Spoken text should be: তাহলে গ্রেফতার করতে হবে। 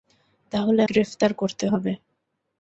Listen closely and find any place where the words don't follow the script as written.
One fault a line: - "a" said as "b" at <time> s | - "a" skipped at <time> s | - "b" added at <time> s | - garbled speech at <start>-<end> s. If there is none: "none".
none